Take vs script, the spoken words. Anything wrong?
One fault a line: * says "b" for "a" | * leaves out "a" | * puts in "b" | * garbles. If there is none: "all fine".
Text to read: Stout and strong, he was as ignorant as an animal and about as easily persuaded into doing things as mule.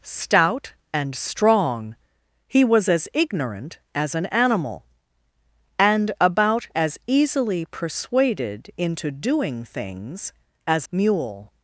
all fine